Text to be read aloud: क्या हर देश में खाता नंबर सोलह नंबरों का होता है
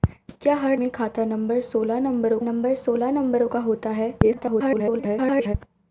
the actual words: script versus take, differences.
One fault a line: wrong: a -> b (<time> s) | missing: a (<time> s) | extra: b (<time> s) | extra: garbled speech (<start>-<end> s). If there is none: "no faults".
missing: देश (0.8 s)
extra: नंबर सोलह नंबरों (2.4 s)
extra: garbled speech (4.2-5.5 s)